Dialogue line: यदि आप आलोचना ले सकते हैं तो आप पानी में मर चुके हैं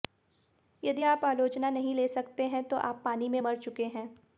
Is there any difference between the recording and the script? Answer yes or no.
yes